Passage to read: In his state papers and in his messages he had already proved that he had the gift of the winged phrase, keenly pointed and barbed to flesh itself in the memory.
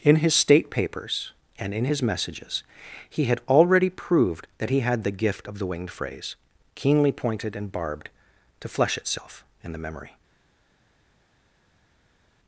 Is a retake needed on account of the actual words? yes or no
no